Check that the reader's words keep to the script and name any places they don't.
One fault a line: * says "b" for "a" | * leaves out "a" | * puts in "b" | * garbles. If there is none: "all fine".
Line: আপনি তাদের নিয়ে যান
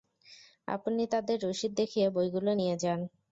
* puts in "রসিদ দেখিয়ে বইগুলো"